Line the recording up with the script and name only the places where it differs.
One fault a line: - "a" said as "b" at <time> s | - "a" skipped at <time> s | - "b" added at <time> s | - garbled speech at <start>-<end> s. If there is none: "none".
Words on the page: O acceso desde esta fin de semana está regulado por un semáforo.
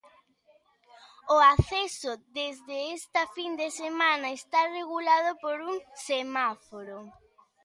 none